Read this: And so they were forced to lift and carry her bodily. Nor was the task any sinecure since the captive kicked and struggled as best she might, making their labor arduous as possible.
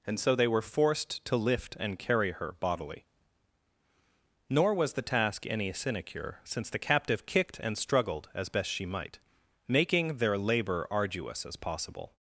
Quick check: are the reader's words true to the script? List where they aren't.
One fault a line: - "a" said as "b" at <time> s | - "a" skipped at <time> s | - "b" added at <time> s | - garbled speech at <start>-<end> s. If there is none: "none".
none